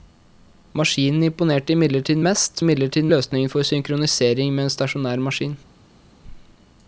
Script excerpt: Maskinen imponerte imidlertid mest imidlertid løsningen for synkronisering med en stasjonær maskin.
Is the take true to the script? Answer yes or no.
yes